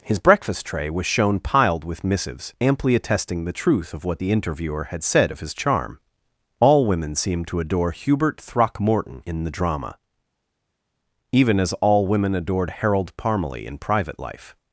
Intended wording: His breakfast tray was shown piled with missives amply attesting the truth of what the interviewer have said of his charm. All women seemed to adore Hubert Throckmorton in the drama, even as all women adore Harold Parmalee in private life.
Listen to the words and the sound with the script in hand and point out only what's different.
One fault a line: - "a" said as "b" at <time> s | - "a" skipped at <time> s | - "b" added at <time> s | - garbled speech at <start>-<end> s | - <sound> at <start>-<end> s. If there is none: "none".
- "have" said as "had" at 4.8 s
- "adore" said as "adored" at 12.4 s